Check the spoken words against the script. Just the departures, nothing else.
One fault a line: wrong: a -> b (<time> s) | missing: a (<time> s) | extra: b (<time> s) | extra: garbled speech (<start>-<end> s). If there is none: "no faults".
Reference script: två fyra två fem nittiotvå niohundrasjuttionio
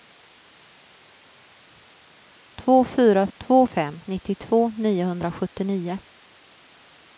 no faults